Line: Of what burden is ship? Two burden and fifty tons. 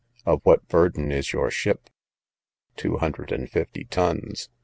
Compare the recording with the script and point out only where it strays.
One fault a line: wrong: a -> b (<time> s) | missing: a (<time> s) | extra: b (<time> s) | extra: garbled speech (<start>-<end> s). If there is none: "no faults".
extra: your (1.3 s)
wrong: burden -> hundred (3.0 s)